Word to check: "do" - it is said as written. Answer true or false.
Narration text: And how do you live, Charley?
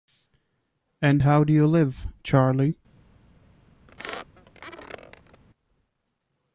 true